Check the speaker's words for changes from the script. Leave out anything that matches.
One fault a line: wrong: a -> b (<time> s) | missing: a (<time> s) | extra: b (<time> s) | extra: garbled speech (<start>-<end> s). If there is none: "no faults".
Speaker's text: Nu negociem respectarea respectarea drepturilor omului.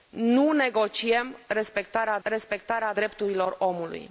no faults